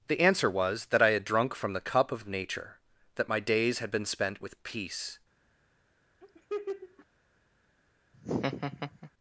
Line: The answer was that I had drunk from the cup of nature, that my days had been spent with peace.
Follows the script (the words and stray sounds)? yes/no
no